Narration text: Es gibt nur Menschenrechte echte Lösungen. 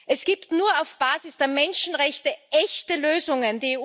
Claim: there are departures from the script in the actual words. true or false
true